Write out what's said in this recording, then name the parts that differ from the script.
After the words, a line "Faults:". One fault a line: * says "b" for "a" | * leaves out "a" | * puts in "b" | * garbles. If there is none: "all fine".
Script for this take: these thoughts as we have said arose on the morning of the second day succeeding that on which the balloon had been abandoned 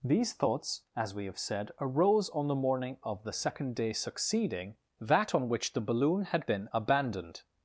these thoughts as we have said arose on the morning of the second day succeeding that on which the balloon had been abandoned
Faults:
all fine